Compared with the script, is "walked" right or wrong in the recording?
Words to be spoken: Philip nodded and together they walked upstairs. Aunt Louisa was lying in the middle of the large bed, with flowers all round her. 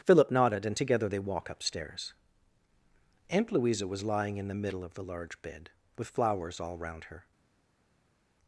wrong